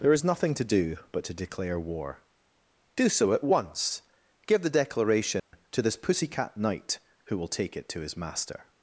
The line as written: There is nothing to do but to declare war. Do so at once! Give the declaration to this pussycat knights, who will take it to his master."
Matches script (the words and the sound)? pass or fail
fail